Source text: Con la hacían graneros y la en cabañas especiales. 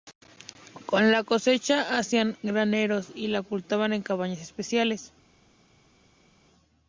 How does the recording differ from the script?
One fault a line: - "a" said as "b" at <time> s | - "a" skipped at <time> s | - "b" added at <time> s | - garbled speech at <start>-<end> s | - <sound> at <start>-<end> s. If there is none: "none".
- "cosecha" added at 1.2 s
- "ocultaban" added at 3.4 s